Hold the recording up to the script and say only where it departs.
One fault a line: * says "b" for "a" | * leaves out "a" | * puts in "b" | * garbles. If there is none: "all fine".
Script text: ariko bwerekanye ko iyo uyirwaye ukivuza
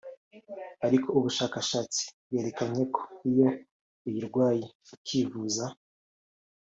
* puts in "ubushakashatsi"